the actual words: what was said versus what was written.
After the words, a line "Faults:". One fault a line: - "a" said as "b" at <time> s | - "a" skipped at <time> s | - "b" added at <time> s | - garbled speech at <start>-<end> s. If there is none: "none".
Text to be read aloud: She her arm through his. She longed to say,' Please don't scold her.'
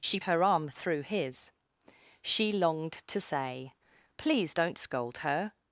She her arm through his. She longed to say,' Please don't scold her.'
Faults:
none